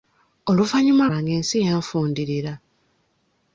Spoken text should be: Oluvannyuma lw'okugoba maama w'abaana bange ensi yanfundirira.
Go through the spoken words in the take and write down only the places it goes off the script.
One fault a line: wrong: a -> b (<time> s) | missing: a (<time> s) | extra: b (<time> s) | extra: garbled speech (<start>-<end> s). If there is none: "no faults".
missing: lw'okugoba maama w'abaana (1.1 s)